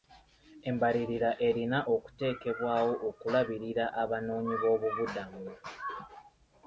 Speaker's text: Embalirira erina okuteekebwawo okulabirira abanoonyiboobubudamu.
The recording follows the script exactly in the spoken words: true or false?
true